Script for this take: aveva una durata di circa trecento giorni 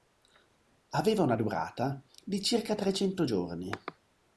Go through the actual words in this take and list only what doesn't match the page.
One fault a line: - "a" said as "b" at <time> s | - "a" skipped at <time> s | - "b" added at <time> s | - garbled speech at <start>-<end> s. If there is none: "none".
none